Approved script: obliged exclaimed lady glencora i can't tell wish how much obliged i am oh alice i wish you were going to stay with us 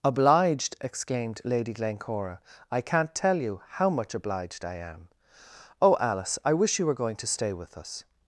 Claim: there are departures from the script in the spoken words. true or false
true